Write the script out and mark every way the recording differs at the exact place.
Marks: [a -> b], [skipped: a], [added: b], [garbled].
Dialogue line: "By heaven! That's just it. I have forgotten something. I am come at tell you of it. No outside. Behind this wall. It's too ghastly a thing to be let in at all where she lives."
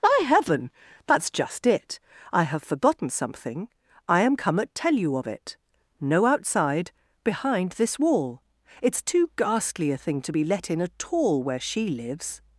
"By heaven! That's just it. I have forgotten something. I am come at tell you of it. No outside. Behind this wall. It's too ghastly a thing to be let in at all where she lives."